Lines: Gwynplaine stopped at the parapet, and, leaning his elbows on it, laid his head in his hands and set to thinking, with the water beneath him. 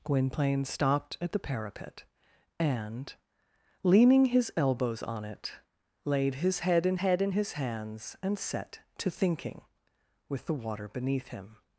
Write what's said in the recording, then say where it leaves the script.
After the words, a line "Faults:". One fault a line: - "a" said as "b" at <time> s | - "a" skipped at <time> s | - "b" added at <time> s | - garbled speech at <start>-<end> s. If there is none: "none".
Gwynplaine stopped at the parapet, and, leaning his elbows on it, laid his head in head in his hands and set to thinking, with the water beneath him.
Faults:
- "head in" added at 7.0 s